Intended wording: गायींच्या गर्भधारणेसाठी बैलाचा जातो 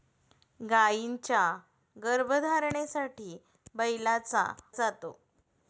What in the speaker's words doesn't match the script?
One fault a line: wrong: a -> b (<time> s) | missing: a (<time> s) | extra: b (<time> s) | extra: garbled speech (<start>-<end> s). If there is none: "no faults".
no faults